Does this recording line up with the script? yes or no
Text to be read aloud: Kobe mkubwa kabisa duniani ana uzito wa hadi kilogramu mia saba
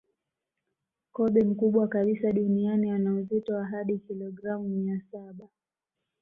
yes